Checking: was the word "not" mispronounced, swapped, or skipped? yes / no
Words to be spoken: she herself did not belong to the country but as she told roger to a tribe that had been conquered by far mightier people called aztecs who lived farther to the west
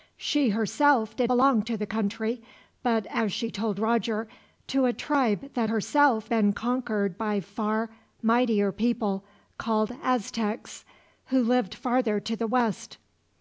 yes